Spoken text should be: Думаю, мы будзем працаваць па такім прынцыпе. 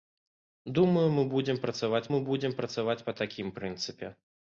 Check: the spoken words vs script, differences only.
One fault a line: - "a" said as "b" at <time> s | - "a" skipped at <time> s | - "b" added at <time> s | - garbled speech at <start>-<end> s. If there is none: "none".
- "мы будзем працаваць" added at 2.1 s